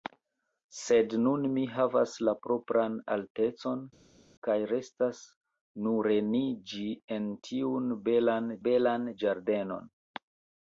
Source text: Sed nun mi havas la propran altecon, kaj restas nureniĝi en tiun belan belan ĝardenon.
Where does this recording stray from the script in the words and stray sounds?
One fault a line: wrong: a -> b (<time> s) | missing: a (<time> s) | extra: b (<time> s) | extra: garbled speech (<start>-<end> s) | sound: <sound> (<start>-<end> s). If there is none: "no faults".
no faults